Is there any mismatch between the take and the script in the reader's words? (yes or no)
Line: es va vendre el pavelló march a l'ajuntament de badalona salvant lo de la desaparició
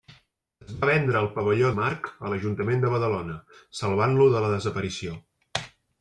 no